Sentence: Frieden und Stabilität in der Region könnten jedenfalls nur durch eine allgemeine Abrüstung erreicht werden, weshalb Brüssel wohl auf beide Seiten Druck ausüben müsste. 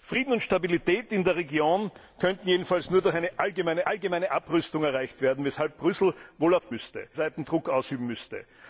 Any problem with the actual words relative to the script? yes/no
yes